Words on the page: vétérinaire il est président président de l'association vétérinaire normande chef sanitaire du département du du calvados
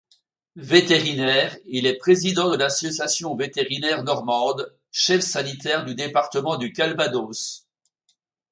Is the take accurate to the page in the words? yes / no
no